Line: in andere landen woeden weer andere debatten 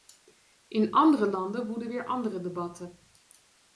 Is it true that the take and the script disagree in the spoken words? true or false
false